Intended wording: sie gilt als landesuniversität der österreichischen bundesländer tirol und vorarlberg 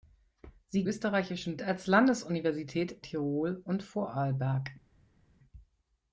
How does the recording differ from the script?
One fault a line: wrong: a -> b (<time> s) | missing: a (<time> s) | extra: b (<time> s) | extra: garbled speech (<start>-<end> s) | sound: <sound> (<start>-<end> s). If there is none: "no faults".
wrong: gilt -> österreichischen (0.8 s)
missing: der österreichischen bundesländer (3.0 s)